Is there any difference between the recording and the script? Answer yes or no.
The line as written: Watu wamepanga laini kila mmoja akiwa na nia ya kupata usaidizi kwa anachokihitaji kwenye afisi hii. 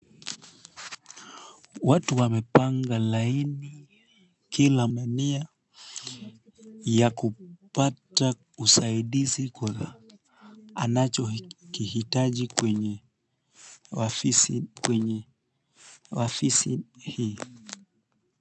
yes